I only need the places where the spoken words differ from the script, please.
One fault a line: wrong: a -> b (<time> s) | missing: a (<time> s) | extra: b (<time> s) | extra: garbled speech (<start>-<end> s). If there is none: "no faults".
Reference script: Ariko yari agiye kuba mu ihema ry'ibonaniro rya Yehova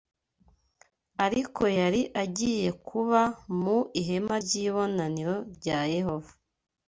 no faults